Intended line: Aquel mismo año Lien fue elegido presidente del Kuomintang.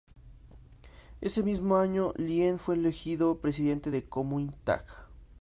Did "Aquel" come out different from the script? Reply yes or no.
yes